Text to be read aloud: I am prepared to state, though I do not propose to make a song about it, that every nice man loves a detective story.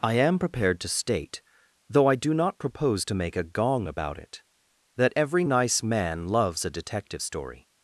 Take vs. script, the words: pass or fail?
fail